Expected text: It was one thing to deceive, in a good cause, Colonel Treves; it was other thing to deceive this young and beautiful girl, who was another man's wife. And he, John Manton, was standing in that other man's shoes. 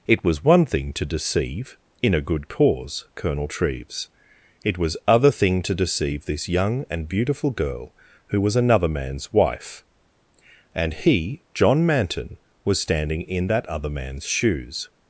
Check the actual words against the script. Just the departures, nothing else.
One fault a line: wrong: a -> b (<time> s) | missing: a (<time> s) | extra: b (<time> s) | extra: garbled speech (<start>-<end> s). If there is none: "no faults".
no faults